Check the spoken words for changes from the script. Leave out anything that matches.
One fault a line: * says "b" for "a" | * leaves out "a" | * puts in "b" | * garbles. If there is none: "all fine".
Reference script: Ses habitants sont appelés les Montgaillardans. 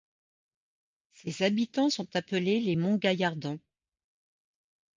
all fine